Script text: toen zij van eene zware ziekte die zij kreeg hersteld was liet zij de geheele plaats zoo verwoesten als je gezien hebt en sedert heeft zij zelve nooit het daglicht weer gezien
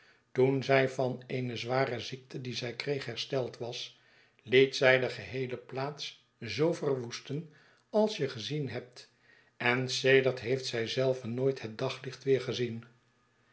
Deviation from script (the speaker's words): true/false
false